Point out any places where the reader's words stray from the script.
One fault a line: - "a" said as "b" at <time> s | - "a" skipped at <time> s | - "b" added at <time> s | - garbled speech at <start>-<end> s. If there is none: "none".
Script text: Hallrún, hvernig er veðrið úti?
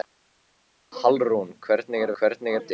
- "veðrið" said as "hvernig" at 2.2 s